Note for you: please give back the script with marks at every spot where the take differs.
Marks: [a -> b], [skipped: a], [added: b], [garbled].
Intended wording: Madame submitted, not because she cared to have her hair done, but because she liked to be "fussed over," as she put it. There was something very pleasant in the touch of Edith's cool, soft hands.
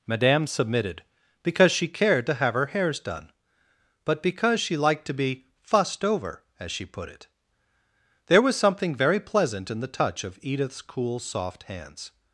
Madame submitted, [skipped: not] because she cared to have her [hair -> hairs] done, but because she liked to be "fussed over," as she put it. There was something very pleasant in the touch of Edith's cool, soft hands.